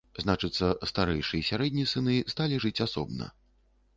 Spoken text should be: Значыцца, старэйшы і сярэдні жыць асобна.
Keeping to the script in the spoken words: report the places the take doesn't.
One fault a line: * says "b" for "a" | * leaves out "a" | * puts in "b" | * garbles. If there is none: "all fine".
* puts in "сыны сталі"